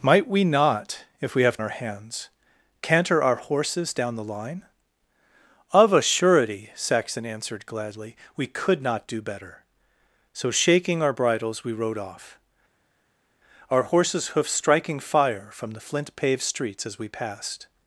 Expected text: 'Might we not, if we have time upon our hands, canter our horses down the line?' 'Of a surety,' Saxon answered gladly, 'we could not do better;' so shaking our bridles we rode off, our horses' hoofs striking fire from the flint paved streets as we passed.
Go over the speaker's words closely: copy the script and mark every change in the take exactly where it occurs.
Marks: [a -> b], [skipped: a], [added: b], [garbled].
'Might we not, if we have [skipped: time upon] our hands, canter our horses down the line?' 'Of a surety,' Saxon answered gladly, 'we could not do better;' so shaking our bridles we rode off, our horses' hoofs striking fire from the flint paved streets as we passed.